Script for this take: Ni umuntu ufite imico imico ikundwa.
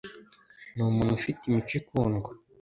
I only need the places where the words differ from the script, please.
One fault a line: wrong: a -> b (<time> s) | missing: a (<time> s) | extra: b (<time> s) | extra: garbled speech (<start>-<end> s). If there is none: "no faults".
missing: imico (1.7 s)